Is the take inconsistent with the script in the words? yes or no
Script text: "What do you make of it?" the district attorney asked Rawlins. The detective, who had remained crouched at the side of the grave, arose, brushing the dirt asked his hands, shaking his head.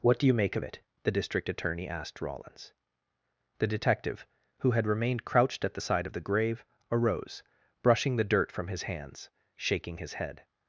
yes